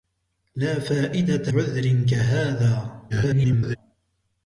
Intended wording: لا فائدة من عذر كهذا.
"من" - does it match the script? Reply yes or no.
no